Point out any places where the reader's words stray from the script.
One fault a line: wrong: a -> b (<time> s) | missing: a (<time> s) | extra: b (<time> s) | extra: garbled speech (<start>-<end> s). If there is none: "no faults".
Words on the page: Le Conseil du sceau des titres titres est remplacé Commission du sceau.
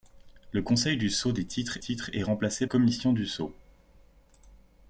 no faults